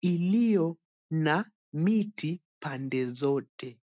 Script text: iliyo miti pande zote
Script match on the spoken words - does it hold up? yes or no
no